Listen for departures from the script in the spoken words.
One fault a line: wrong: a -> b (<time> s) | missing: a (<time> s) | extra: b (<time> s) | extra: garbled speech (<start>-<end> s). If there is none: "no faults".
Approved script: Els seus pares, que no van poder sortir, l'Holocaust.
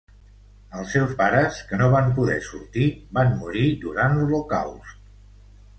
extra: van morir durant (3.2 s)